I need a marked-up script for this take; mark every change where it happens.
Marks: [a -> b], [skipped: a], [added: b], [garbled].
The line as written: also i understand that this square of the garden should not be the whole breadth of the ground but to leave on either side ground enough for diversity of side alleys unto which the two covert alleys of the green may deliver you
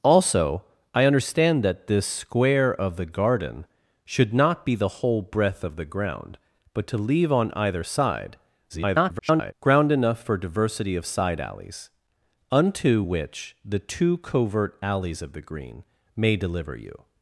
also i understand that this square of the garden should not be the whole breadth of the ground but to leave on either side [garbled] ground enough for diversity of side alleys unto which the two covert alleys of the green may deliver you